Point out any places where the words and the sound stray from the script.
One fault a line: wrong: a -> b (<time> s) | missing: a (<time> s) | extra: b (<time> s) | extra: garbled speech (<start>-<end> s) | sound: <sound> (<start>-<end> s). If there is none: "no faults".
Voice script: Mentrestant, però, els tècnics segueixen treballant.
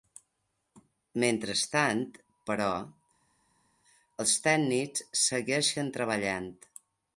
no faults